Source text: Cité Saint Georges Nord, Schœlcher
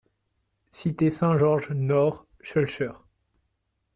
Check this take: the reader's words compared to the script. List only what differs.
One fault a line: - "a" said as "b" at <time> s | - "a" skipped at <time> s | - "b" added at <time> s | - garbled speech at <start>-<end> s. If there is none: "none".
none